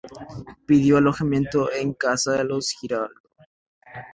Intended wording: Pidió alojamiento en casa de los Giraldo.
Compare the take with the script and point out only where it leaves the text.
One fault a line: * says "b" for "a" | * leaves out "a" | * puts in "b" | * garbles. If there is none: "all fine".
all fine